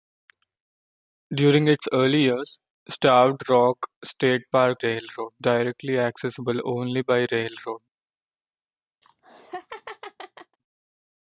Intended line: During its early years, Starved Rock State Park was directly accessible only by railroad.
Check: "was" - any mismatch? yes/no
yes